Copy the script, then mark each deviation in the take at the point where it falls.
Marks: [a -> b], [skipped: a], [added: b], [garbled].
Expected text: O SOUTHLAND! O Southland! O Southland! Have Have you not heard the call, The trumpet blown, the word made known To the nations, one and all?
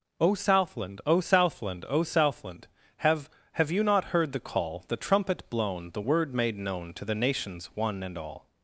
O SOUTHLAND! O Southland! O Southland! Have Have you not heard the call, The trumpet blown, the word made known To the nations, one and all?